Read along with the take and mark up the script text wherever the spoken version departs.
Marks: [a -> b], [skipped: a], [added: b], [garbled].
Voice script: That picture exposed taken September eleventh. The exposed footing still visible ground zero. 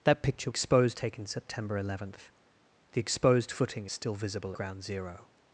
That picture exposed taken September eleventh. The exposed footing still visible ground zero.